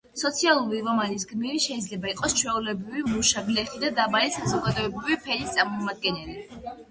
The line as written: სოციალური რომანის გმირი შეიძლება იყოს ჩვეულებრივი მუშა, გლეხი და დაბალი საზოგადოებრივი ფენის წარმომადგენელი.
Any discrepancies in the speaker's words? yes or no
no